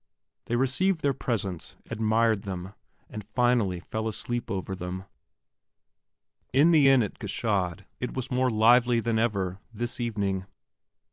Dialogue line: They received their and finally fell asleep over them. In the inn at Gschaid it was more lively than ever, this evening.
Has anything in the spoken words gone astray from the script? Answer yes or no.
yes